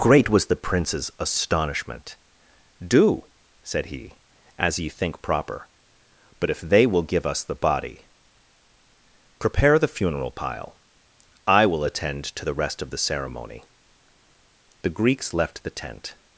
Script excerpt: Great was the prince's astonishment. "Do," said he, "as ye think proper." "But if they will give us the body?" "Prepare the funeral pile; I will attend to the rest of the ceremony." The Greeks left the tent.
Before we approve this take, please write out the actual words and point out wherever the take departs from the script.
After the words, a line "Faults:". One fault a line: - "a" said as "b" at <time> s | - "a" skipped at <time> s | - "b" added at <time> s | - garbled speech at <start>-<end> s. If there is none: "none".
Great was the prince's astonishment. "Do," said he, "as ye think proper." "But if they will give us the body?" "Prepare the funeral pile; I will attend to the rest of the ceremony." The Greeks left the tent.
Faults:
none